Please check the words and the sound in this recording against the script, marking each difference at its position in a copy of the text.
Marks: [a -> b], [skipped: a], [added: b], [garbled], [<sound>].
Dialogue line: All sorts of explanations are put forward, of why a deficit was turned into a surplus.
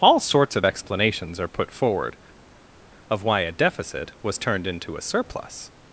All sorts of explanations are put forward, of why a deficit was turned into a surplus.